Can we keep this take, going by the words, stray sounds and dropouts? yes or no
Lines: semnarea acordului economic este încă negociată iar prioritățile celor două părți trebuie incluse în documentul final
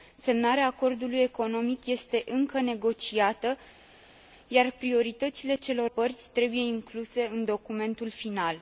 no